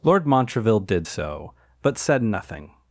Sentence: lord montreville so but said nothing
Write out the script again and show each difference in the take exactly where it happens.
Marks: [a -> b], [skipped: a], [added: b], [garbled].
lord montreville [added: did] so but said nothing